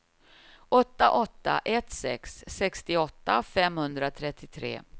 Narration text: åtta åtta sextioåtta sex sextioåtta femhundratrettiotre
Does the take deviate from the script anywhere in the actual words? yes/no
yes